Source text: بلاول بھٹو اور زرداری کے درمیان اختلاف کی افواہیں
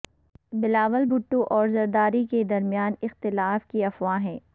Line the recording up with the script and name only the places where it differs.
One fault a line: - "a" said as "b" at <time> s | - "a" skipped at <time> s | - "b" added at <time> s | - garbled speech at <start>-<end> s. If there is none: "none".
none